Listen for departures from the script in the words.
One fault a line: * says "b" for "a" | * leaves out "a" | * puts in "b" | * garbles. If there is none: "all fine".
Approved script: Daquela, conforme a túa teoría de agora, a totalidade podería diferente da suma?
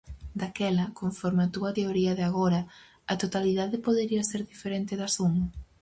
* puts in "ser"